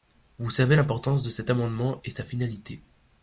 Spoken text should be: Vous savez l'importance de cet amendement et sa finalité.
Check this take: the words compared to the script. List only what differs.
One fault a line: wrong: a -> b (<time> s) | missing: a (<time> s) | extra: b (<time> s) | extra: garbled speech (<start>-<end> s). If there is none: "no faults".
no faults